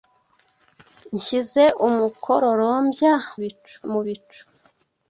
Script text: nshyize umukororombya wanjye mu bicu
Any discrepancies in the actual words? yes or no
yes